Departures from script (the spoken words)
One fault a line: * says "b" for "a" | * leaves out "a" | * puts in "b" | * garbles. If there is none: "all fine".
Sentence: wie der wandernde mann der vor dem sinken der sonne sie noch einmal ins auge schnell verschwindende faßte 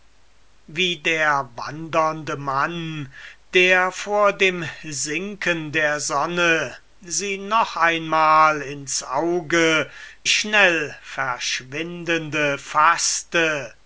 all fine